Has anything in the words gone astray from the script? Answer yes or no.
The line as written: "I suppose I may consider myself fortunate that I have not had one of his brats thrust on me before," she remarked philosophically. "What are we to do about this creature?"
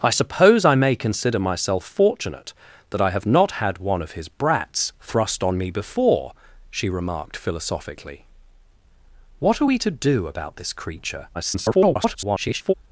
yes